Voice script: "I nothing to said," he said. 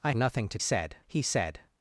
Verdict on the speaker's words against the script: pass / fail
pass